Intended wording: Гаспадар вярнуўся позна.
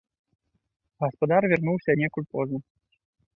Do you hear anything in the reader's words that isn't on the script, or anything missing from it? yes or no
yes